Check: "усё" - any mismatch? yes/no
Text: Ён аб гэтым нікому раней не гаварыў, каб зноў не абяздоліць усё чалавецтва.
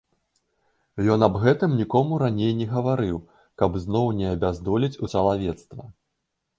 yes